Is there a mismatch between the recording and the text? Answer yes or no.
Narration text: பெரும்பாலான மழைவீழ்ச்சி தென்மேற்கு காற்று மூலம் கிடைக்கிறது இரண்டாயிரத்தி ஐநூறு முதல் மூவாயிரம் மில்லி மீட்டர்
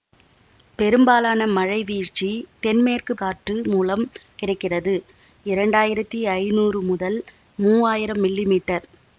no